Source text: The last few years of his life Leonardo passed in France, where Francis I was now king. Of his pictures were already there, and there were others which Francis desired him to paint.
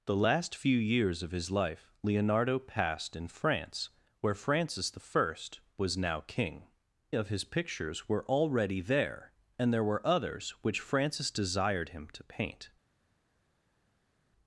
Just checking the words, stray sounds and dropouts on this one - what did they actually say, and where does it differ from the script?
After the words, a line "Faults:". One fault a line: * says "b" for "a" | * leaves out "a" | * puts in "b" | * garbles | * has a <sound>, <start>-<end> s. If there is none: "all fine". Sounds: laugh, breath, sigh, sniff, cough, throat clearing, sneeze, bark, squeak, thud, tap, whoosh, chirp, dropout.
The last few years of his life Leonardo passed in France, where Francis I was now king. Of his pictures were already there, and there were others which Francis desired him to paint.
Faults:
all fine